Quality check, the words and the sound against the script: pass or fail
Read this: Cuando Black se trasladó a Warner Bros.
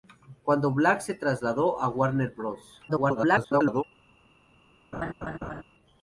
fail